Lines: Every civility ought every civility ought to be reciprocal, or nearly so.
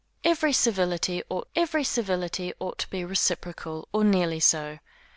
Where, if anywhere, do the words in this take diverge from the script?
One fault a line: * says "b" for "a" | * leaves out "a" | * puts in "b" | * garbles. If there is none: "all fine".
all fine